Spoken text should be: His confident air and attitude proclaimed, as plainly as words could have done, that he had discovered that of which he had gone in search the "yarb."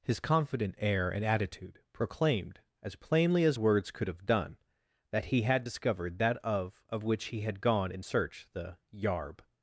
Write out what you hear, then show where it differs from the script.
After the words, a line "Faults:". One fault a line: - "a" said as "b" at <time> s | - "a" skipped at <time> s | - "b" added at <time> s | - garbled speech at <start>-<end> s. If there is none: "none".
His confident air and attitude proclaimed, as plainly as words could have done, that he had discovered that of of which he had gone in search the "yarb."
Faults:
- "of" added at 6.9 s